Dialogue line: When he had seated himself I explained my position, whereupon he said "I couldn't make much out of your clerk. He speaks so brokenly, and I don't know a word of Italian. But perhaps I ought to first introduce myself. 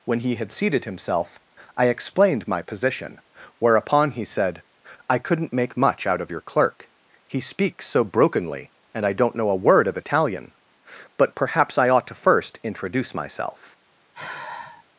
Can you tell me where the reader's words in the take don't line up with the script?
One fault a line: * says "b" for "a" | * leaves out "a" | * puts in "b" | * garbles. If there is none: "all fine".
all fine